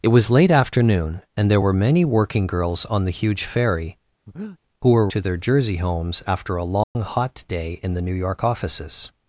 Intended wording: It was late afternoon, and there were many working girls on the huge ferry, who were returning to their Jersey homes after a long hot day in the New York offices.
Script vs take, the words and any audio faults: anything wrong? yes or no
yes